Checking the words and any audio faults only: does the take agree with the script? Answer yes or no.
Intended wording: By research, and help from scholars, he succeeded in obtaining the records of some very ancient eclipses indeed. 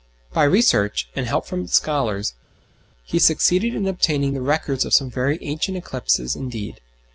yes